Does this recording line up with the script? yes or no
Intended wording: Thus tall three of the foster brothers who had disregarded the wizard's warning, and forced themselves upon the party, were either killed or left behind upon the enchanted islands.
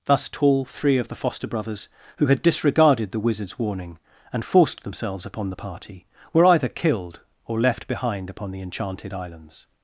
yes